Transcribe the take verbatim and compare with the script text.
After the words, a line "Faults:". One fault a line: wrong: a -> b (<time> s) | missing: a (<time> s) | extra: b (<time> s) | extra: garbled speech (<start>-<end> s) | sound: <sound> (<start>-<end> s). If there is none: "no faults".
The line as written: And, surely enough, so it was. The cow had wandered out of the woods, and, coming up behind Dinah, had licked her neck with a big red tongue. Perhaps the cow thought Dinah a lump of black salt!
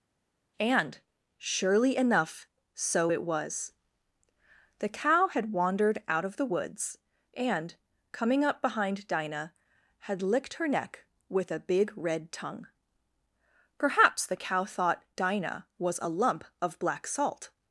And, surely enough, so it was. The cow had wandered out of the woods, and, coming up behind Dinah, had licked her neck with a big red tongue. Perhaps the cow thought Dinah was a lump of black salt!
Faults:
extra: was (15.8 s)